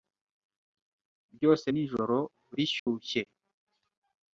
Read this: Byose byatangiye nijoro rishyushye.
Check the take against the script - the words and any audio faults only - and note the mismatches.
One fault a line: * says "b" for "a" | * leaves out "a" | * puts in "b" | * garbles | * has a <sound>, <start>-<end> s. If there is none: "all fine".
* leaves out "byatangiye"
* has a dropout, 2.8-2.9 s